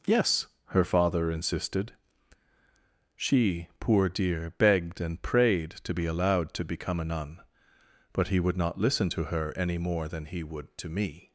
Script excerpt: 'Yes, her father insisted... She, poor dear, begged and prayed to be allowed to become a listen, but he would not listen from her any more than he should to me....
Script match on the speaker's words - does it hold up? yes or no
no